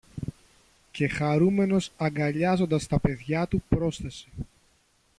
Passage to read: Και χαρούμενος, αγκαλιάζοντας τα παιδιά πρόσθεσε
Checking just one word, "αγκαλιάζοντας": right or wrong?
right